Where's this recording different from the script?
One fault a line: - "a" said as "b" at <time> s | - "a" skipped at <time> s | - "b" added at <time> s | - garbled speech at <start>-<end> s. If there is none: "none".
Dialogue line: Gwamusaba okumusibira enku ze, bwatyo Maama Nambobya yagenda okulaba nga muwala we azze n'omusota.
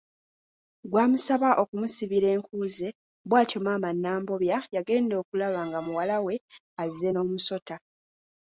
none